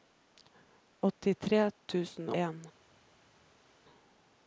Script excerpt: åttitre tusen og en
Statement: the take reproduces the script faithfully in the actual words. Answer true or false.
false